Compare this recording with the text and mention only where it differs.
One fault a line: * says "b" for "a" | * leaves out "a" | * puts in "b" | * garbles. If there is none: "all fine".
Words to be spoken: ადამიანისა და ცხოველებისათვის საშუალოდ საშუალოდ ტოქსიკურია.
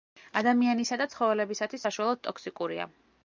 * leaves out "საშუალოდ"